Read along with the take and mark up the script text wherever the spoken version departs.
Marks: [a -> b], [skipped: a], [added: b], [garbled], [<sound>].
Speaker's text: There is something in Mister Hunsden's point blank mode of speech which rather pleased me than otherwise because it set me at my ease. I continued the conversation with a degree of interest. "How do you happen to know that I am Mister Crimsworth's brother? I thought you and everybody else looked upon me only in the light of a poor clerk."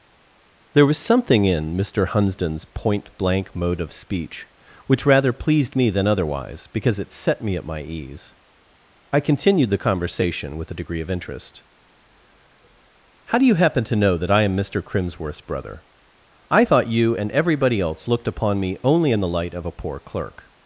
There [is -> was] something in Mister Hunsden's point blank mode of speech which rather pleased me than otherwise because it set me at my ease. I continued the conversation with a degree of interest. "How do you happen to know that I am Mister Crimsworth's brother? I thought you and everybody else looked upon me only in the light of a poor clerk."